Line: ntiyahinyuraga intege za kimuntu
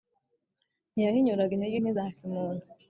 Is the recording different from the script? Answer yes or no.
yes